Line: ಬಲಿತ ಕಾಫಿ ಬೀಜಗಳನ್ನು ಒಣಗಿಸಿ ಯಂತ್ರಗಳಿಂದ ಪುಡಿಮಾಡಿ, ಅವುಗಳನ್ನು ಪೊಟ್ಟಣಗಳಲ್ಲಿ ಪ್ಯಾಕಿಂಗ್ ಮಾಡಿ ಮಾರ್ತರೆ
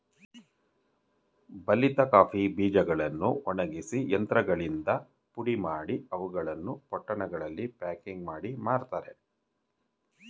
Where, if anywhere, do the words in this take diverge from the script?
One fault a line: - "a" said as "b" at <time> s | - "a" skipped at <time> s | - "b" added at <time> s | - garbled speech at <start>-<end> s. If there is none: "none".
none